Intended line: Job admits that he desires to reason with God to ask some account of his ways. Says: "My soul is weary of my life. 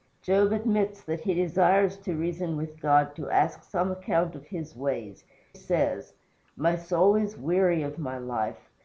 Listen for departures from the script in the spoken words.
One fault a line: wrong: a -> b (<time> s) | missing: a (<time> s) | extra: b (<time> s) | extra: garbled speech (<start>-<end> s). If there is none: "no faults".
no faults